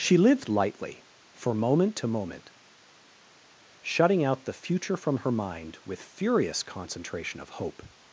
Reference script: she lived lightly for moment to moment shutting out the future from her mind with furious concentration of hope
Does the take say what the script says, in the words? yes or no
yes